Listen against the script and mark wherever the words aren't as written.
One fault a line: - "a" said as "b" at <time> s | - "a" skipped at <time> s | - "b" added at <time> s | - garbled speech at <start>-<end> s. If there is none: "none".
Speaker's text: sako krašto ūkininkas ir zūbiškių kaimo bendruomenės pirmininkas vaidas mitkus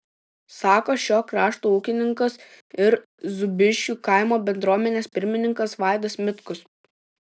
- "šio" added at 1.0 s